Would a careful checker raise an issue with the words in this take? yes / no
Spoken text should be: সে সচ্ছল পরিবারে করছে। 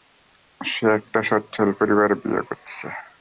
yes